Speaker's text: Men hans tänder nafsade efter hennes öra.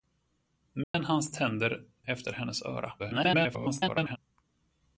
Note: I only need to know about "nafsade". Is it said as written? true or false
false